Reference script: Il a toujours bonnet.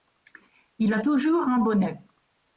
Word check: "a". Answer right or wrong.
right